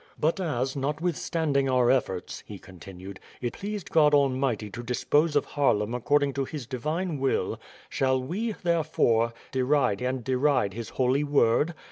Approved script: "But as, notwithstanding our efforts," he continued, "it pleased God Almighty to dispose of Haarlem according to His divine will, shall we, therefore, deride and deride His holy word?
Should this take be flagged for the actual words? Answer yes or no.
no